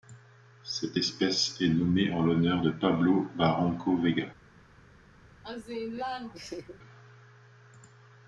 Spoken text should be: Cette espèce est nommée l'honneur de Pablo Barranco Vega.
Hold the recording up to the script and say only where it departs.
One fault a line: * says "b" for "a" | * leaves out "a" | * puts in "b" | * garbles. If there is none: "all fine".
* puts in "en"